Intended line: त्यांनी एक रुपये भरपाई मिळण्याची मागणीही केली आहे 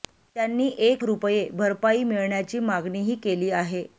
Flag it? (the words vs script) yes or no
no